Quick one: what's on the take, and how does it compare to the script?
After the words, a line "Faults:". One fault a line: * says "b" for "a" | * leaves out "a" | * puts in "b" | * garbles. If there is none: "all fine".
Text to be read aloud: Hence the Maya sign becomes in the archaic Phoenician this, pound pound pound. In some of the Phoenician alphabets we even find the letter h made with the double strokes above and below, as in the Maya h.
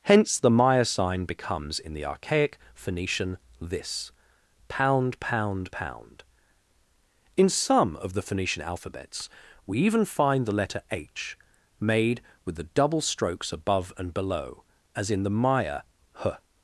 Hence the Maya sign becomes in the archaic Phoenician this, pound pound pound. In some of the Phoenician alphabets we even find the letter h made with the double strokes above and below, as in the Maya h.
Faults:
all fine